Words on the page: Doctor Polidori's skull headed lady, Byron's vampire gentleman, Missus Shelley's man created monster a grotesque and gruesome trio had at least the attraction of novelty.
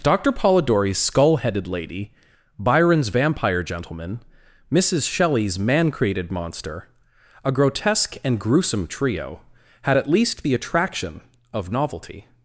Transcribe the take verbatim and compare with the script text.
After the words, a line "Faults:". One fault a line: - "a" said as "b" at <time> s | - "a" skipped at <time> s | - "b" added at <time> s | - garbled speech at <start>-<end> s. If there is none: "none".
Doctor Polidori's skull headed lady, Byron's vampire gentleman, Missus Shelley's man created monster a grotesque and gruesome trio had at least the attraction of novelty.
Faults:
none